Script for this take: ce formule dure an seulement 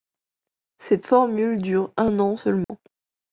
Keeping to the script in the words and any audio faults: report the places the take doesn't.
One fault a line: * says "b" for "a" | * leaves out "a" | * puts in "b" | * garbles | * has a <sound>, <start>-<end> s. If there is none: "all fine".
* says "cette" for "ce"
* puts in "un"
* has a dropout, 2.6-2.7 s